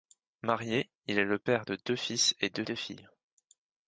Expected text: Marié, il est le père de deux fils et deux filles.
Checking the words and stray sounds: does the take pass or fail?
fail